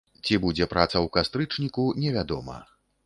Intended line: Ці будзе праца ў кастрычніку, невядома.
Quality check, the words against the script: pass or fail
pass